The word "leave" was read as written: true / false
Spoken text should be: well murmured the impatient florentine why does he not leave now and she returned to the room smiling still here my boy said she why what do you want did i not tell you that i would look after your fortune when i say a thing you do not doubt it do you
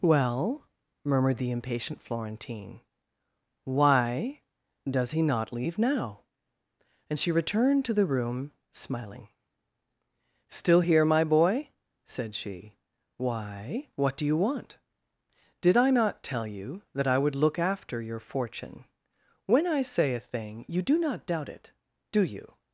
true